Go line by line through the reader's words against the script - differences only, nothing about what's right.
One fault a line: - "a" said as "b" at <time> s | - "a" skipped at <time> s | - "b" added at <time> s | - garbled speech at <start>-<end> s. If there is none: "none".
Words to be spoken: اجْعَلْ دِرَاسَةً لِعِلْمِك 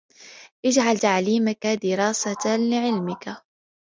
- "تَعْلِيمَك" added at 0.9 s